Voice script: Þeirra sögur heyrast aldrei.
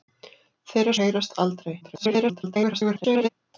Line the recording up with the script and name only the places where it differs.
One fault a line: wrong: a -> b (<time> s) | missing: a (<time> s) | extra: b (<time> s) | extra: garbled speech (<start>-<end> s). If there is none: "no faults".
missing: sögur (0.9 s)
extra: garbled speech (1.8-3.3 s)